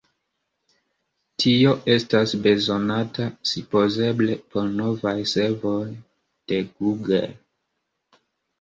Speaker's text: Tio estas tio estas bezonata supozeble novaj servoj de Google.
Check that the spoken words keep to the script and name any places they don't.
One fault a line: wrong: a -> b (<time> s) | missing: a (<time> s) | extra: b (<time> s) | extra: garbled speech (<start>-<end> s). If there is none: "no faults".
missing: tio estas (2.3 s)
extra: por (4.5 s)